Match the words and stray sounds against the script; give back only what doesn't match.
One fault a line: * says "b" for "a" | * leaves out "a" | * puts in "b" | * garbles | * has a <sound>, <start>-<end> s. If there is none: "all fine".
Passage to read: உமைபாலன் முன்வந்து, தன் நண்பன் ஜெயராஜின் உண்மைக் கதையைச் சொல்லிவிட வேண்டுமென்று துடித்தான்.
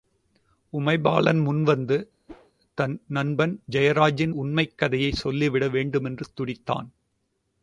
* has a whoosh, 2.3-2.5 s